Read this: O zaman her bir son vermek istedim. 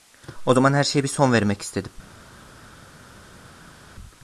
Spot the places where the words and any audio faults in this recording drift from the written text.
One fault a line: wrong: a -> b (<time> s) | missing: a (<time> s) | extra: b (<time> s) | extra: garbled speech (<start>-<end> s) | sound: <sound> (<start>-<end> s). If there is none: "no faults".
extra: şeye (0.8 s)